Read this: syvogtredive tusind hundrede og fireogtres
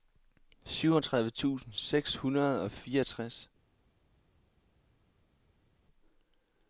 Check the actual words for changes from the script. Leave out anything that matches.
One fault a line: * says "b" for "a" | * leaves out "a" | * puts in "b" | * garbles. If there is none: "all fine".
* puts in "seks"